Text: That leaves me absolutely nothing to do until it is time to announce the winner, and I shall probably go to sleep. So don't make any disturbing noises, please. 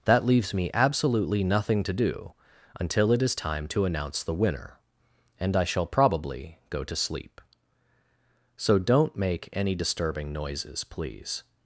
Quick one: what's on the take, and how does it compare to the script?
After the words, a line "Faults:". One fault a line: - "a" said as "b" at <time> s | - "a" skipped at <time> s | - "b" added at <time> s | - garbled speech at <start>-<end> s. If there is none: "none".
That leaves me absolutely nothing to do until it is time to announce the winner, and I shall probably go to sleep. So don't make any disturbing noises, please.
Faults:
none